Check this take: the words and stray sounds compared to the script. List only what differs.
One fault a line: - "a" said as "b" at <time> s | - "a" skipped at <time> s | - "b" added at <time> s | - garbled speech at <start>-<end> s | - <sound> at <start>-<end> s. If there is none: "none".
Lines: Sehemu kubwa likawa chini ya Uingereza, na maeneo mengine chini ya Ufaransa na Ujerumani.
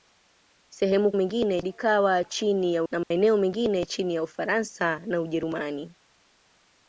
- "kubwa" said as "mengine" at 1.1 s
- "Uingereza" skipped at 2.8 s
- dropout at 3.0-3.1 s